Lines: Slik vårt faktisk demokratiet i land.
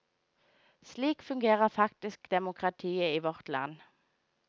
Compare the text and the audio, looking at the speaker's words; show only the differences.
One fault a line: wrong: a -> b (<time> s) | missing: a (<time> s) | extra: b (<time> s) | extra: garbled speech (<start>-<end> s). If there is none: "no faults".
wrong: vårt -> fungerer (1.2 s)
extra: vårt (3.2 s)